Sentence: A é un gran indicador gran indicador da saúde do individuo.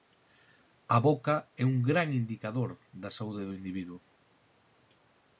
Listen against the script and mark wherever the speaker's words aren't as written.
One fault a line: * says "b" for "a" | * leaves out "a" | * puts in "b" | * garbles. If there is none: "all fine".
* puts in "boca"
* leaves out "gran indicador"